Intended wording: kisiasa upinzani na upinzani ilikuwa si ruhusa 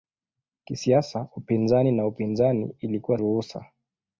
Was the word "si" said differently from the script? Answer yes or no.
yes